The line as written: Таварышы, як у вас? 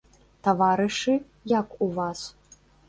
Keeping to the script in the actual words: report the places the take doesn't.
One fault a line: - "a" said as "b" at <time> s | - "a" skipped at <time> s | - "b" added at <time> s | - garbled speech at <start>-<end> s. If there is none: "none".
none